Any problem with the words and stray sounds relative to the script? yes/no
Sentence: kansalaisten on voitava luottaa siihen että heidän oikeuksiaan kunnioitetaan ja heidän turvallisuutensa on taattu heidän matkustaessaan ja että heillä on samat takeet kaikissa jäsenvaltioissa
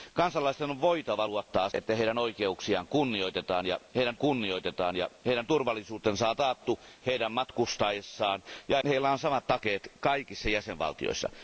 yes